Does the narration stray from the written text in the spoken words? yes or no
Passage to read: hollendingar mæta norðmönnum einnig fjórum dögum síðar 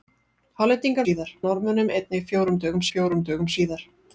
yes